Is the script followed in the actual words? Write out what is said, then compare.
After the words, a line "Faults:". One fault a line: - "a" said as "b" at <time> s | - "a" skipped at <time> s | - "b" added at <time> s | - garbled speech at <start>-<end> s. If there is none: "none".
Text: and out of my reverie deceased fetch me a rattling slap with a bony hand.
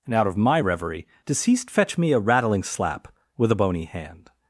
and out of my reverie deceased fetch me a rattling slap with a bony hand.
Faults:
none